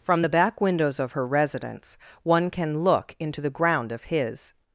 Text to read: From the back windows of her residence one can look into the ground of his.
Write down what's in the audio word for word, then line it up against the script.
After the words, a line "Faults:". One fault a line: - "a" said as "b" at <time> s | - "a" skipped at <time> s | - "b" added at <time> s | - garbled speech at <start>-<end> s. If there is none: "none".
From the back windows of her residence one can look into the ground of his.
Faults:
none